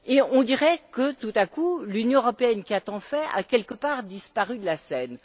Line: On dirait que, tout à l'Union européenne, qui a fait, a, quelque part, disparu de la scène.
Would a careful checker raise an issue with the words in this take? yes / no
yes